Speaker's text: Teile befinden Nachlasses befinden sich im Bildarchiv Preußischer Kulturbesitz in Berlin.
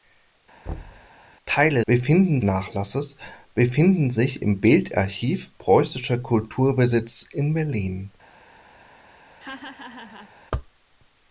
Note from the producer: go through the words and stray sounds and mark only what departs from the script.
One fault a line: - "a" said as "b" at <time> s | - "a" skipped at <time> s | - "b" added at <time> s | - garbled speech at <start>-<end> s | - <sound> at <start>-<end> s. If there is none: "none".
- thud at 0.7-1.1 s
- laugh at 9.4-10.3 s